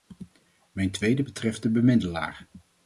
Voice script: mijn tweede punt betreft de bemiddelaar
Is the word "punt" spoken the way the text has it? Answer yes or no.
no